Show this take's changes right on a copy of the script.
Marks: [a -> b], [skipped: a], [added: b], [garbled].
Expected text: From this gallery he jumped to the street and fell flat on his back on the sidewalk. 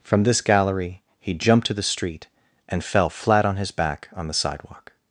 From this gallery he jumped to the street and fell flat on his back on the sidewalk.